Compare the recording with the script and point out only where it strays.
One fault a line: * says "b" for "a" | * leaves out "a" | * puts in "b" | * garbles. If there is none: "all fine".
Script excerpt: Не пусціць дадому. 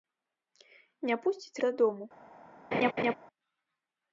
all fine